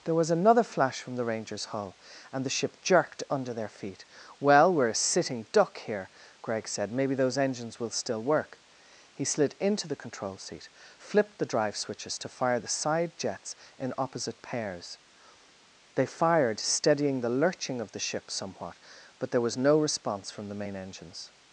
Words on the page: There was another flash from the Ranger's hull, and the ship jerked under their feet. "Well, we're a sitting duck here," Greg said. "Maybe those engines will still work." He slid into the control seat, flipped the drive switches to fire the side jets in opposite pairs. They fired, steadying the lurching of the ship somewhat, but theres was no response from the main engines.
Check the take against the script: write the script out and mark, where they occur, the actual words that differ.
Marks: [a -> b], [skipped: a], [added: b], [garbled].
There was another flash from the Ranger's hull, and the ship jerked under their feet. "Well, we're a sitting duck here," Greg said. "Maybe those engines will still work." He slid into the control seat, flipped the drive switches to fire the side jets in opposite pairs. They fired, steadying the lurching of the ship somewhat, but [theres -> there] was no response from the main engines.